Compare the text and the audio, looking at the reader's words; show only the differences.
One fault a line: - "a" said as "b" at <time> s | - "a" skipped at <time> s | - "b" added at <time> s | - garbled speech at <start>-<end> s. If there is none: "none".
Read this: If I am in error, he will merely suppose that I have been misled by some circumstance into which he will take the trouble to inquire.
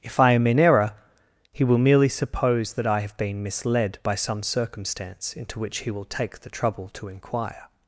none